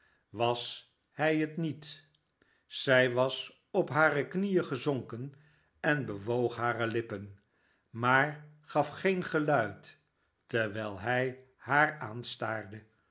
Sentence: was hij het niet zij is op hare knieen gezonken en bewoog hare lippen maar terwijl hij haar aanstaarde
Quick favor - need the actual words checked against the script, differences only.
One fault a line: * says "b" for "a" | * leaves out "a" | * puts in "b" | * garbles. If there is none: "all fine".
* says "was" for "is"
* puts in "gaf geen geluid"